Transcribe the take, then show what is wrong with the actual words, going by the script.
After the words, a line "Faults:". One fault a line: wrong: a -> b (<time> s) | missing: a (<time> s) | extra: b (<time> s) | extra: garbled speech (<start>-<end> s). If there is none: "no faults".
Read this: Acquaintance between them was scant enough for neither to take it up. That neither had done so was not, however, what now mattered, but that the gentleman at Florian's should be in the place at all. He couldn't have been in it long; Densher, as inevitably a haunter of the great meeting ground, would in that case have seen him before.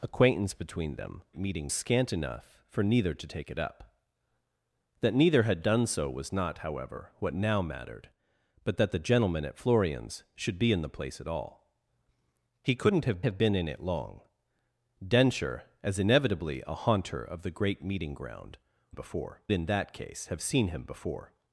Acquaintance between them meeting scant enough for neither to take it up. That neither had done so was not, however, what now mattered, but that the gentleman at Florian's should be in the place at all. He couldn't have have been in it long; Densher, as inevitably a haunter of the great meeting ground, before in that case have seen him before.
Faults:
wrong: was -> meeting (1.4 s)
extra: have (13.2 s)
wrong: would -> before (18.9 s)